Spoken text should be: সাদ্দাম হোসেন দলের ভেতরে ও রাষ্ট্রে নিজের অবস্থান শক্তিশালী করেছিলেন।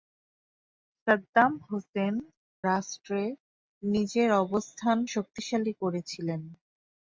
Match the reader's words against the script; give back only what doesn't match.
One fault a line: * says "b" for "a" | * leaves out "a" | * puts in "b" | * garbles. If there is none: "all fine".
* leaves out "দলের ভেতরে ও"